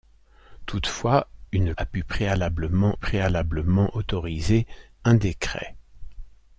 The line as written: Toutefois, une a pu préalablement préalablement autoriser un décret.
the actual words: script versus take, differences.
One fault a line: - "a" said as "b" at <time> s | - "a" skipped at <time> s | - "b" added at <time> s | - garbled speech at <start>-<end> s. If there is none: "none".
none